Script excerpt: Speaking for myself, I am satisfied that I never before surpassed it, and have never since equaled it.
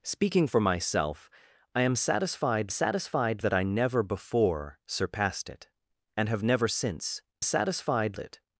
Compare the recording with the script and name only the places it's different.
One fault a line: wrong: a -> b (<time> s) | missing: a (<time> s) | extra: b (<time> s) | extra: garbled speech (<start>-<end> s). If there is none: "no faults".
extra: satisfied (2.7 s)
wrong: equaled -> satisfied (7.4 s)